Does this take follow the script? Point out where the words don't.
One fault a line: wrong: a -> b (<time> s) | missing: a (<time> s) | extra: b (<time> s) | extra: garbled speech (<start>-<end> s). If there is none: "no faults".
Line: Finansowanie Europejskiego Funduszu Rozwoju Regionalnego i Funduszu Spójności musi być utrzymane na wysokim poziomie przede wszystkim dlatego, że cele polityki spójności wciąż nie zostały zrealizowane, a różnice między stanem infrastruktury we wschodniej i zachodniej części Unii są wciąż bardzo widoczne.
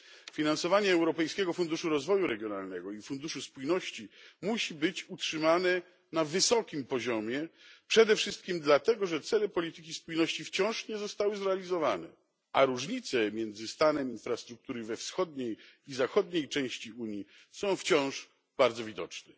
no faults